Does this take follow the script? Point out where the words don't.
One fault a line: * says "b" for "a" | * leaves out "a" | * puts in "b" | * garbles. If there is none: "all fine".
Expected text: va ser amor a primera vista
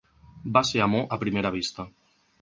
all fine